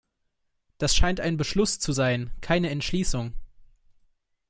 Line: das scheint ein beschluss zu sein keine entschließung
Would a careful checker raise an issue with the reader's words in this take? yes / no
no